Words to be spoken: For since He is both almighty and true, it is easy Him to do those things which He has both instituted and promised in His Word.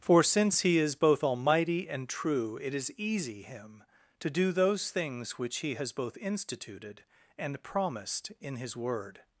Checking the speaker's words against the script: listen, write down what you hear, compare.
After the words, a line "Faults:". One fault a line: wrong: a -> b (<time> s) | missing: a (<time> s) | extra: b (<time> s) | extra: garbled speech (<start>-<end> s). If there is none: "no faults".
For since He is both almighty and true, it is easy Him to do those things which He has both instituted and promised in His Word.
Faults:
no faults